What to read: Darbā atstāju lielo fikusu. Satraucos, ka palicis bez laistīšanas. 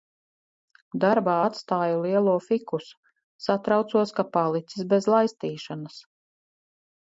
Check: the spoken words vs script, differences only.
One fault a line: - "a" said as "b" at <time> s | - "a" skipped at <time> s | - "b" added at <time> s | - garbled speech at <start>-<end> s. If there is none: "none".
none